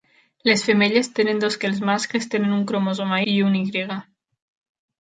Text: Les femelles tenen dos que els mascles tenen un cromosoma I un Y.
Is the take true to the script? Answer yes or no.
yes